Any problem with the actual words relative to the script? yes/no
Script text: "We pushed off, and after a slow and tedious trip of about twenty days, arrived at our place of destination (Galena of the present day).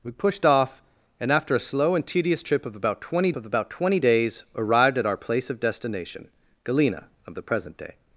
yes